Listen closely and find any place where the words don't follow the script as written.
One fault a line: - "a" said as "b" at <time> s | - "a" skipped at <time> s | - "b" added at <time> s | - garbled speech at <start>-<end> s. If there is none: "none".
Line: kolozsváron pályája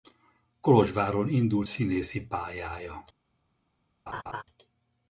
- "indult színészi" added at 1.3 s